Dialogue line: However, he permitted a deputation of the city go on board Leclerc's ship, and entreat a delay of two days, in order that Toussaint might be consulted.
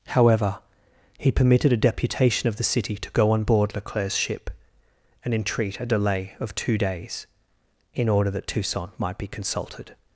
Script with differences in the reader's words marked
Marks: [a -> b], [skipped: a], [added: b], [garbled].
However, he permitted a deputation of the city [added: to] go on board Leclerc's ship, and entreat a delay of two days, in order that Toussaint might be consulted.